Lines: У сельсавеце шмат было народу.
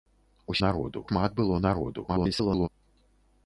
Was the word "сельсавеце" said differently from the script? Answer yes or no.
yes